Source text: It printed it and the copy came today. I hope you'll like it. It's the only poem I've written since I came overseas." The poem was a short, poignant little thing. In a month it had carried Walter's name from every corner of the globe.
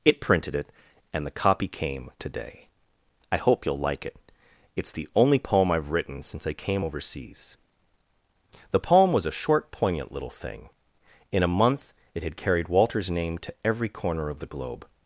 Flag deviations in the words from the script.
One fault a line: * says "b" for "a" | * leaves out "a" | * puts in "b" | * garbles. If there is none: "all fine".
* says "to" for "from"